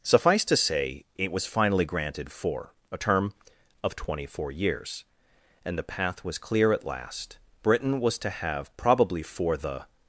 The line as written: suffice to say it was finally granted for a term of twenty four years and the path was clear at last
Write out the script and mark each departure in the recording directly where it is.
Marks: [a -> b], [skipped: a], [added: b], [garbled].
suffice to say it was finally granted for a term of twenty four years and the path was clear at last [added: britain was to have probably for the]